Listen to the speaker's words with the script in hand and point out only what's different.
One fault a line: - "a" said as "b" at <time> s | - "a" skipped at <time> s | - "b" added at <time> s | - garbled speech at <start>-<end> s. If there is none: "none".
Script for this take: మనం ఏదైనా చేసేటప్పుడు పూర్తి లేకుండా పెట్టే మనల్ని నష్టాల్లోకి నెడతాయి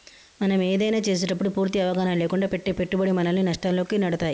- "అవగాహన" added at 1.8 s
- "పెట్టుబడి" added at 2.7 s